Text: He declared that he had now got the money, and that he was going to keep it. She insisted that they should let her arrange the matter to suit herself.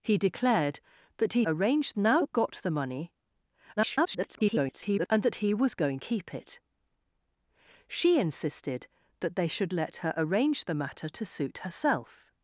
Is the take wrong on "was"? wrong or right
right